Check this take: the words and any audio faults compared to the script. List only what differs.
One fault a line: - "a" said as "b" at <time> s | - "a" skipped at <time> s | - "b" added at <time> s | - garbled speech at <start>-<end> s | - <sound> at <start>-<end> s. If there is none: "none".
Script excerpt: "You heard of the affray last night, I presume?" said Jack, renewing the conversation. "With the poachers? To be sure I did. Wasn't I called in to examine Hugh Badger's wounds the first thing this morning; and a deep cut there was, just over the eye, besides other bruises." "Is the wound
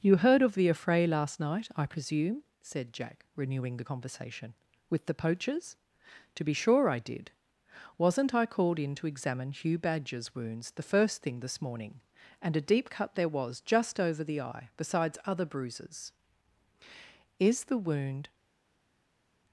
none